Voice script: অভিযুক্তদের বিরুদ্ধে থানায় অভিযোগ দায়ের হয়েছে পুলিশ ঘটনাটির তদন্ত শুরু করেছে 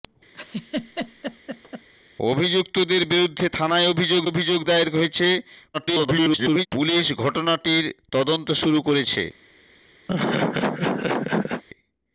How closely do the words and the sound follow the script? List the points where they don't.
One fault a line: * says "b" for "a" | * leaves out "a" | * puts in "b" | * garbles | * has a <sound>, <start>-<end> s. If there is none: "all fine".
* has a laugh, 0.3-1.9 s
* puts in "অভিযোগ"
* garbles
* has a laugh, 10.1-11.6 s